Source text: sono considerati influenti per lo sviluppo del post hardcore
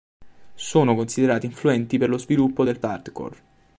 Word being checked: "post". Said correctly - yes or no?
no